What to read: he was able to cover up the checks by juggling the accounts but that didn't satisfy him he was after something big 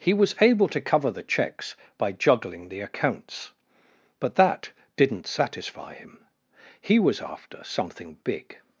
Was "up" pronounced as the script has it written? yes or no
no